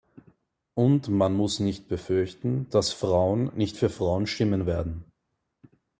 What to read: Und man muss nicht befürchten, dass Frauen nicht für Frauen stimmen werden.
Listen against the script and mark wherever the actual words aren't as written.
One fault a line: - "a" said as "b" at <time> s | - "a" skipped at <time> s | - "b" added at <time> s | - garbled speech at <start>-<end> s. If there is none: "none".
none